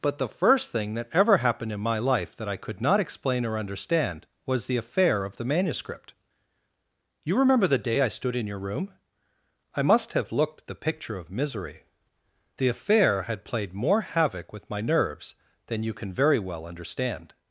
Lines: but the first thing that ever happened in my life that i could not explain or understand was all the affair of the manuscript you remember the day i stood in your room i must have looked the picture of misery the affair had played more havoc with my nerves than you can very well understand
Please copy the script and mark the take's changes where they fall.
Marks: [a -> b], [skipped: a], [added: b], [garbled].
but the first thing that ever happened in my life that i could not explain or understand was [skipped: all] the affair of the manuscript you remember the day i stood in your room i must have looked the picture of misery the affair had played more havoc with my nerves than you can very well understand